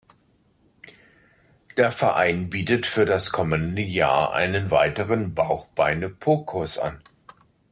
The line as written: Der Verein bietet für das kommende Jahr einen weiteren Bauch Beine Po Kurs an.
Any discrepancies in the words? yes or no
no